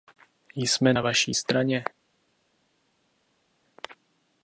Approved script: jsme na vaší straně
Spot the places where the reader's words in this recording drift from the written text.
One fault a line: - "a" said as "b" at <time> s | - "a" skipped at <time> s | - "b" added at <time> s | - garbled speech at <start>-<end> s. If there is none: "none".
none